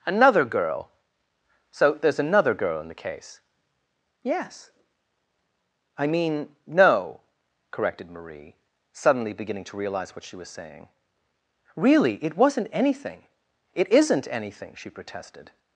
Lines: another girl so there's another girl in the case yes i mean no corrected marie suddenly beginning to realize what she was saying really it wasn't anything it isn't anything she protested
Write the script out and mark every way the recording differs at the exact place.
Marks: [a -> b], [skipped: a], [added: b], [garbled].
another girl so there's another girl in the case yes i mean no corrected marie suddenly beginning to realize what she was saying really it wasn't anything it isn't anything she protested